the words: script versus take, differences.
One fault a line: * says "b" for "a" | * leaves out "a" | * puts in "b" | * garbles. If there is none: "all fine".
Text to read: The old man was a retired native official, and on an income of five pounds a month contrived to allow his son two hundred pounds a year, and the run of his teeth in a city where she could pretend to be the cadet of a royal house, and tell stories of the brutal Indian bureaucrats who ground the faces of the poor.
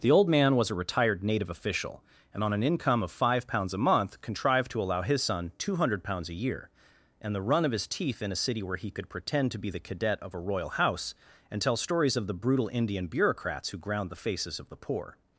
* says "he" for "she"